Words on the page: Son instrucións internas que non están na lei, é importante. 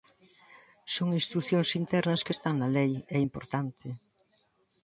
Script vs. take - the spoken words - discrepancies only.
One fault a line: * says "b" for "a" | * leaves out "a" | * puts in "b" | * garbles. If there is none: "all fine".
* leaves out "non"